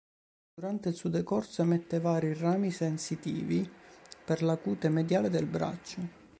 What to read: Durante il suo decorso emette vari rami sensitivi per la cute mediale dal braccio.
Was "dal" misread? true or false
true